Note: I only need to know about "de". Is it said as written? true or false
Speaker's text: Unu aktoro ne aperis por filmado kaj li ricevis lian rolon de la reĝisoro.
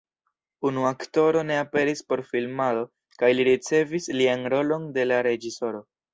true